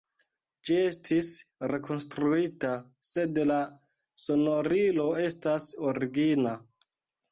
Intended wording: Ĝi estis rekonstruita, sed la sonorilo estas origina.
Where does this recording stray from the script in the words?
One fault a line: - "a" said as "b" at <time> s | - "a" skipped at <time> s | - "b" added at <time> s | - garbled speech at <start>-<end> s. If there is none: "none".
none